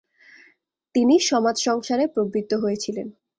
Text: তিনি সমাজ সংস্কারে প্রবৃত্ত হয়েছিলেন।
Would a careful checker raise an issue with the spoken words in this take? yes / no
no